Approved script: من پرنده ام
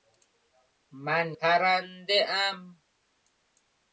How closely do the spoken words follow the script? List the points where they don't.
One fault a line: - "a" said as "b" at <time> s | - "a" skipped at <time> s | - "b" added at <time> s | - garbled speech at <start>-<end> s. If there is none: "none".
none